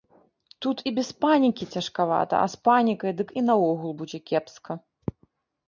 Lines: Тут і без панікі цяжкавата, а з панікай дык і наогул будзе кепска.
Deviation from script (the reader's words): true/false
false